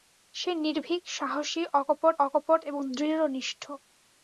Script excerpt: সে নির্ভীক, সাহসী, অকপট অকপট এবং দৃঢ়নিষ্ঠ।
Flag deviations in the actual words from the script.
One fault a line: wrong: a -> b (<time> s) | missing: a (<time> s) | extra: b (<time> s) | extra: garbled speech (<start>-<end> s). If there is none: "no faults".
no faults